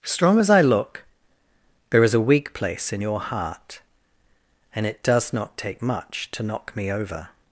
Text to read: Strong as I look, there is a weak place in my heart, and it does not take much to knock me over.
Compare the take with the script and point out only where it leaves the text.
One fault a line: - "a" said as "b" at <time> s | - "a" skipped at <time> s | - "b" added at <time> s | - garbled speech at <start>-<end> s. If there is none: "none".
- "my" said as "your" at 3.0 s